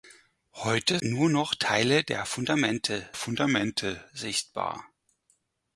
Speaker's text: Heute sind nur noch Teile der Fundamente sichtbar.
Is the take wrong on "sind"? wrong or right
wrong